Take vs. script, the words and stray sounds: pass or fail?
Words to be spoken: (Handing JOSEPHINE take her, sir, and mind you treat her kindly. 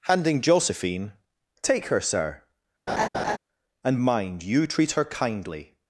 fail